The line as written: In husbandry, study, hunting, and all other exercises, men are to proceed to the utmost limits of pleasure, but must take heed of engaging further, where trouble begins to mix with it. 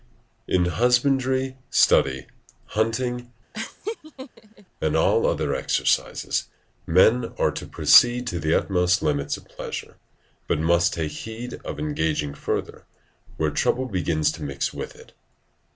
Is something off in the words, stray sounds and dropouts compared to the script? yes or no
yes